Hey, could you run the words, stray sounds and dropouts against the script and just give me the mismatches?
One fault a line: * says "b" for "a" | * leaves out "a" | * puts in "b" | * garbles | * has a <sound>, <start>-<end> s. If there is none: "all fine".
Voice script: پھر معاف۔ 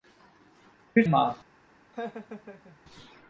* has a laugh, 1.9-2.8 s